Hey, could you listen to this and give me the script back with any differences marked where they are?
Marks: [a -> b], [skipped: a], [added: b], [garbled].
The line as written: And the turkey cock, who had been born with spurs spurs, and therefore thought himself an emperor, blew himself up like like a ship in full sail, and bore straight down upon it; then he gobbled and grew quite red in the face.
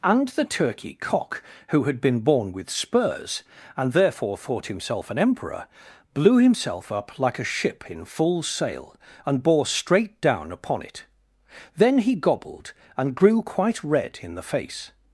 And the turkey cock, who had been born with spurs [skipped: spurs,] and therefore thought himself an emperor, blew himself up like [skipped: like] a ship in full sail, and bore straight down upon it; then he gobbled and grew quite red in the face.